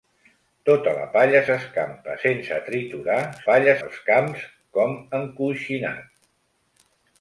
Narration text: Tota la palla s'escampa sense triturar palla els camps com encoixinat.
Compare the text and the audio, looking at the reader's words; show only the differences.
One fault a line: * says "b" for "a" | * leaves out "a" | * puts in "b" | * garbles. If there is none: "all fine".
all fine